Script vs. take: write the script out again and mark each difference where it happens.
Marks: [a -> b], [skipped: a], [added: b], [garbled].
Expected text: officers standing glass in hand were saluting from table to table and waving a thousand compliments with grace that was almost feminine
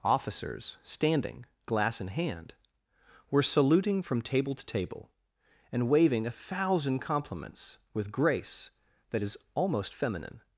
officers standing glass in hand were saluting from table to table and waving a thousand compliments with grace that [was -> is] almost feminine